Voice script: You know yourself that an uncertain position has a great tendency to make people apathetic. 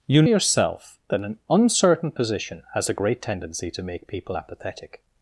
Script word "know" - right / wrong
wrong